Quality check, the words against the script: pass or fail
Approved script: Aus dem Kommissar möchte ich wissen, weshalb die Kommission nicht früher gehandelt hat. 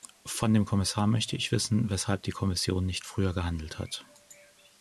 fail